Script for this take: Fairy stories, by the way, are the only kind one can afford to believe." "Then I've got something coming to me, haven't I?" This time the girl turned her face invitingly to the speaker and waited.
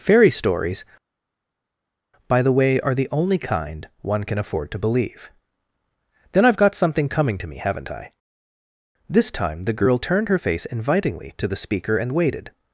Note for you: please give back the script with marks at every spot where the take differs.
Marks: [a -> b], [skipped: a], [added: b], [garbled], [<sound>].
Fairy stories, by the way, are the only kind one can afford to believe." "Then I've got something coming to me, haven't I?" This time the girl turned her face invitingly to the speaker and waited.